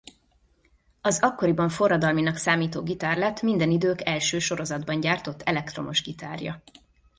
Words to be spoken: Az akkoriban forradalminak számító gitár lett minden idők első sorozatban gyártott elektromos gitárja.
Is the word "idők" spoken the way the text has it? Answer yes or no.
yes